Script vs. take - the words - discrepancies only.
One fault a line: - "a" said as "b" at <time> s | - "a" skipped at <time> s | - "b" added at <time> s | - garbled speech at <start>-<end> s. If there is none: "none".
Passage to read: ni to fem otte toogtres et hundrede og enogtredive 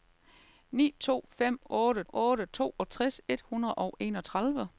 - "otte" added at 2.1 s